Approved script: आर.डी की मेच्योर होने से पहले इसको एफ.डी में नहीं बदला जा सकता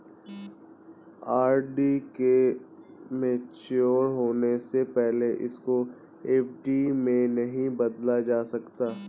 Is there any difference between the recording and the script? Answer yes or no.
yes